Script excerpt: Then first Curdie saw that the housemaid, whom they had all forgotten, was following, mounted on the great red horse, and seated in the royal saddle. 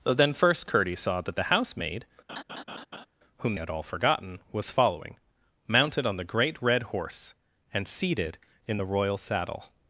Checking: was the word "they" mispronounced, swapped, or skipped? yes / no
yes